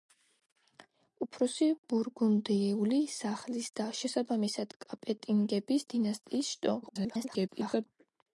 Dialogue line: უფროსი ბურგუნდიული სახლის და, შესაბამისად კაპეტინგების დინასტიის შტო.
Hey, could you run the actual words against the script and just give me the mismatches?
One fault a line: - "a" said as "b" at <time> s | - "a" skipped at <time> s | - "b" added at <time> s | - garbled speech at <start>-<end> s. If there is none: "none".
- garbled speech at 6.8-7.9 s